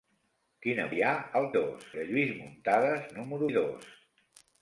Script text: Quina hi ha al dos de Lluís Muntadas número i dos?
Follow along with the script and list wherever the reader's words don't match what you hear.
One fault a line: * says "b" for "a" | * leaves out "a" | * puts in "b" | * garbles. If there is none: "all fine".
all fine